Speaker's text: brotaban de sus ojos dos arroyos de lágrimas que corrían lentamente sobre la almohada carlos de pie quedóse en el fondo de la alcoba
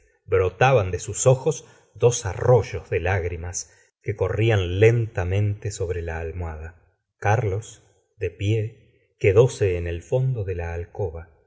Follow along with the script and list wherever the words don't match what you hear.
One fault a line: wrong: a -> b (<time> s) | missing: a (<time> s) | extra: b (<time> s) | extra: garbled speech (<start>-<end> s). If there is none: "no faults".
no faults